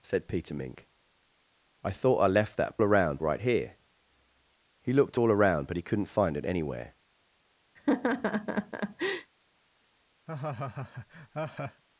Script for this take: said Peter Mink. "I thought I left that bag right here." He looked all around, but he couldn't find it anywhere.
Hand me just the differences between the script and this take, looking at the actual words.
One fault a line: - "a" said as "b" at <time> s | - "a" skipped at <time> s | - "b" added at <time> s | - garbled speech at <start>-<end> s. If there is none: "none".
- "bag" said as "around" at 2.8 s